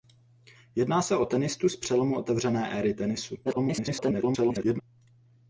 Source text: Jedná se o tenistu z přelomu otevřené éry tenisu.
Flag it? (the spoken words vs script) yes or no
yes